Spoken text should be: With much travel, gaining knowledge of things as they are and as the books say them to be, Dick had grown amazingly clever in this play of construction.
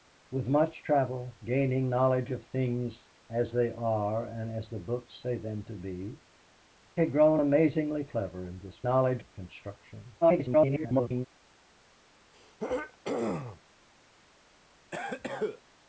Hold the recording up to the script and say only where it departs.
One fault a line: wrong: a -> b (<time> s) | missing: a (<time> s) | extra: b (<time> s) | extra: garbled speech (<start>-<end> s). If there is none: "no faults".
missing: Dick (6.2 s)
wrong: play -> knowledge (8.8 s)
extra: garbled speech (10.2-11.3 s)